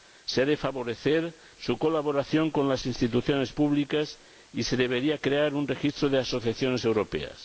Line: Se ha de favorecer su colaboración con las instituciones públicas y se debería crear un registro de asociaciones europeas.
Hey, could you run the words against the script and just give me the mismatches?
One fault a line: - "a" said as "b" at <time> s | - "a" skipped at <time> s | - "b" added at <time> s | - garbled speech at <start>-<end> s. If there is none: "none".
none